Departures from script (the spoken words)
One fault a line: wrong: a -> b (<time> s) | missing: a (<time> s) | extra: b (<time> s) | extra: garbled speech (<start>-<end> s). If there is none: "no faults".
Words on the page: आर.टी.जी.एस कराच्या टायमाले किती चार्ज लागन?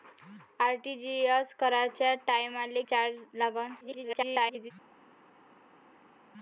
missing: किती (2.8 s)
extra: garbled speech (3.8-4.7 s)